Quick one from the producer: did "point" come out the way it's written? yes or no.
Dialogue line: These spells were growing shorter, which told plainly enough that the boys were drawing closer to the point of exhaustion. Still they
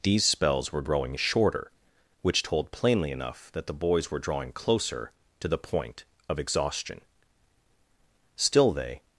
yes